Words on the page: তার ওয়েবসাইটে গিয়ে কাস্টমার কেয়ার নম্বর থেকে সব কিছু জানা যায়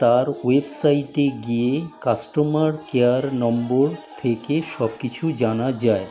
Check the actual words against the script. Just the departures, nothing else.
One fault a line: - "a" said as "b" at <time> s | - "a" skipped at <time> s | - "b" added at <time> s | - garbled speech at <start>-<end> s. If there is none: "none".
none